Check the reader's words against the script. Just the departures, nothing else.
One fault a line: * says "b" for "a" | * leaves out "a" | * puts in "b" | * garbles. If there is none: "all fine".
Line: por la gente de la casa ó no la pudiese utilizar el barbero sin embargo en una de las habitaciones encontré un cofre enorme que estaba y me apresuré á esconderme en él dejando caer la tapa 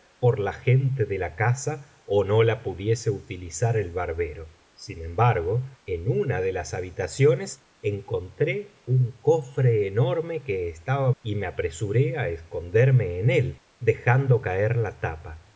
all fine